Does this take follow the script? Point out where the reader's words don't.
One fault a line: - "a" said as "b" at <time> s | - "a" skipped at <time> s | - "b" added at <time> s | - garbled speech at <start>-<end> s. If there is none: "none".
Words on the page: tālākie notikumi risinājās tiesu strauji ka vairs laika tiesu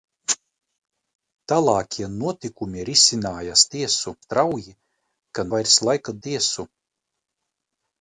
none